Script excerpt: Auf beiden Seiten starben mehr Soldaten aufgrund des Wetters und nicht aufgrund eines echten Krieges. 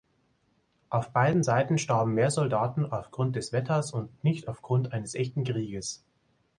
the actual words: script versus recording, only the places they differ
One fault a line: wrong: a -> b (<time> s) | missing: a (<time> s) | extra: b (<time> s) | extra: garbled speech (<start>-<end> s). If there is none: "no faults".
no faults